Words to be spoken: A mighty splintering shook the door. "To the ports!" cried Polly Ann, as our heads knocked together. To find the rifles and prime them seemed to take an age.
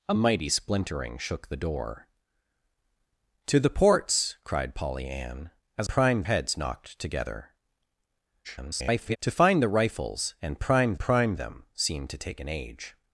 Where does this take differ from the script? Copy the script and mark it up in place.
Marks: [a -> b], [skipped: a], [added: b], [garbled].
A mighty splintering shook the door. "To the ports!" cried Polly Ann, as [our -> prime] heads knocked together. [garbled] To find the rifles and prime [added: prime] them seemed to take an age.